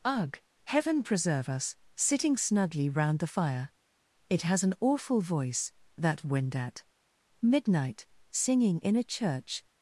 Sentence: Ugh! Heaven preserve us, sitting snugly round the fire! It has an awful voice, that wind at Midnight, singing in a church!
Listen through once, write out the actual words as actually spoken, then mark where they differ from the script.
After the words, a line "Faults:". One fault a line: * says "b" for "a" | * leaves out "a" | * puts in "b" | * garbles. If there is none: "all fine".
Ugh! Heaven preserve us, sitting snugly round the fire! It has an awful voice, that wind at Midnight, singing in a church!
Faults:
all fine